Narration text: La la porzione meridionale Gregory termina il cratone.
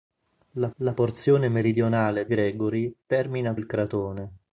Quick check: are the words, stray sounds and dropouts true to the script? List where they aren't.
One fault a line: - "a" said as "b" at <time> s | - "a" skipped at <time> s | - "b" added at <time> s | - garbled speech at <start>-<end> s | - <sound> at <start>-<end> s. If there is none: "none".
none